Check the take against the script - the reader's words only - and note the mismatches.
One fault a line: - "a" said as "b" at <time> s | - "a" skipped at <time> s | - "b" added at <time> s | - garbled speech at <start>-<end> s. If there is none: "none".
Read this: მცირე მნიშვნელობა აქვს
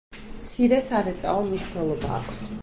- "სარეწაო" added at 0.8 s